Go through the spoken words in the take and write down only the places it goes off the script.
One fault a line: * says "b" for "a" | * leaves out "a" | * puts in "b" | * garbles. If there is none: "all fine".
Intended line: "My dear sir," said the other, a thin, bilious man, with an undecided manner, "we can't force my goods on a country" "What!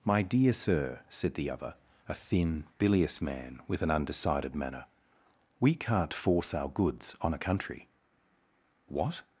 * says "our" for "my"